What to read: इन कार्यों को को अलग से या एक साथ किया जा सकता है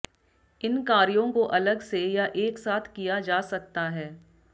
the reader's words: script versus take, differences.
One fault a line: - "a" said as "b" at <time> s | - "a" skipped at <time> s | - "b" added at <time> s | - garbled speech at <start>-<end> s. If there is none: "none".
- "को" skipped at 1.4 s